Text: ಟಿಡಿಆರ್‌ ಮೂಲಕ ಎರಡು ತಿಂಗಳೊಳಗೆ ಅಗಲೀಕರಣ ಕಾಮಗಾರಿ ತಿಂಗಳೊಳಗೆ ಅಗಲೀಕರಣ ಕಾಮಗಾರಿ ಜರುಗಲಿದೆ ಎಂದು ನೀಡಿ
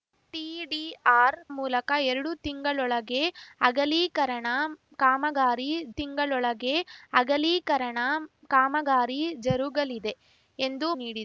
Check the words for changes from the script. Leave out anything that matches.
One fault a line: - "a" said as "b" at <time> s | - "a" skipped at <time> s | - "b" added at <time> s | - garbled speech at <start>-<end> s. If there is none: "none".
none